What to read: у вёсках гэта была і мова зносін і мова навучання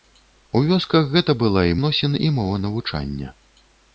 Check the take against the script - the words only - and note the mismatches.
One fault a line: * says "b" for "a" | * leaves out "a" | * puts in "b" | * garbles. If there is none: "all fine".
* leaves out "мова"